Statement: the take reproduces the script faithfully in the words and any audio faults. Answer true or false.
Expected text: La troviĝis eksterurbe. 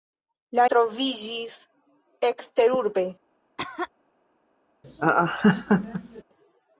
false